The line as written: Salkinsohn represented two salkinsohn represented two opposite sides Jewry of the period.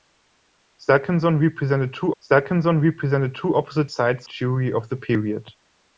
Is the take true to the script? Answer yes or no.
yes